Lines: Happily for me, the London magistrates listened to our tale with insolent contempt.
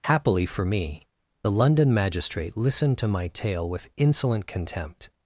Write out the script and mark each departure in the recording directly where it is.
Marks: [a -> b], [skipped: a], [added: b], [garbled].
Happily for me, the London [magistrates -> magistrate] listened to [our -> my] tale with insolent contempt.